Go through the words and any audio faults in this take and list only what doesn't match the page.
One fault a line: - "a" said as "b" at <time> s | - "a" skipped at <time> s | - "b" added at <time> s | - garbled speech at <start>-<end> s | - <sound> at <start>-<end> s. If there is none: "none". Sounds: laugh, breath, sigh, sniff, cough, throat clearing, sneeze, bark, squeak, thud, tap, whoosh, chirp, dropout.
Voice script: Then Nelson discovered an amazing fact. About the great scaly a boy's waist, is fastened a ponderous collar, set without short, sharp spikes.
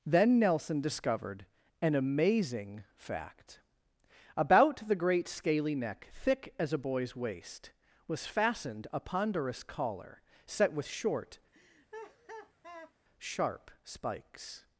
- "neck thick as" added at 5.8 s
- "is" said as "was" at 8.1 s
- "without" said as "with" at 10.7 s
- laugh at 11.5-12.9 s